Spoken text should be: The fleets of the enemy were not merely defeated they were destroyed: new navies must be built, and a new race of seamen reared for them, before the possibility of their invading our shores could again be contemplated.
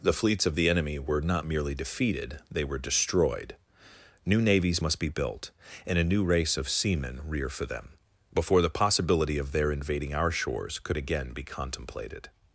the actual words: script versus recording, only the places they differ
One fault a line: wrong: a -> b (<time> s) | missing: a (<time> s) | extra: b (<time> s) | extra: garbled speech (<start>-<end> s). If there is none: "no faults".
wrong: reared -> rear (7.3 s)